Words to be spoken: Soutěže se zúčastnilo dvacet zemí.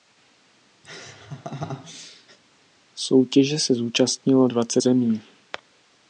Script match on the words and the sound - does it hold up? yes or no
no